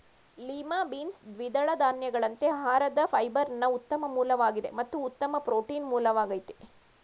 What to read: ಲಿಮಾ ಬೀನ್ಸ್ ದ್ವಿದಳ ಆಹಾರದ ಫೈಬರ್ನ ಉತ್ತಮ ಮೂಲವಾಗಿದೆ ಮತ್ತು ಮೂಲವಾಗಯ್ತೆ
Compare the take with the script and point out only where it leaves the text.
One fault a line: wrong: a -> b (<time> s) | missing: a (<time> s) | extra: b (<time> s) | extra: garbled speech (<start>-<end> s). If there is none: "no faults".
extra: ಧಾನ್ಯಗಳಂತೆ (1.8 s)
extra: ಉತ್ತಮ ಪ್ರೋಟೀನ್ (5.0 s)